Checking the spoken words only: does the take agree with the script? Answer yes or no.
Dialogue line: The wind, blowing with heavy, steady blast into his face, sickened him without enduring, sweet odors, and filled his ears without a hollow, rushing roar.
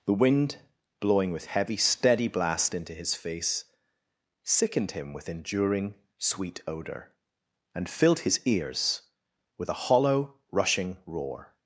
no